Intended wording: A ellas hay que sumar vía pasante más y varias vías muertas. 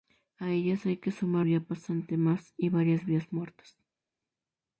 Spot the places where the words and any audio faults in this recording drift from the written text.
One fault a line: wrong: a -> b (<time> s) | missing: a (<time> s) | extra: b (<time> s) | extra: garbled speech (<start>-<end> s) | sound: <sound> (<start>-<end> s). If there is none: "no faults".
no faults